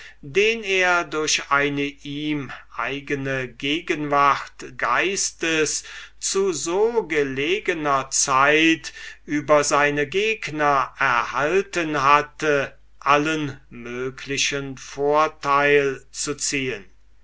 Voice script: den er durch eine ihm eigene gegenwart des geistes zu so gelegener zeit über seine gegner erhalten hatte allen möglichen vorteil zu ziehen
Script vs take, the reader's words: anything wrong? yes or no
yes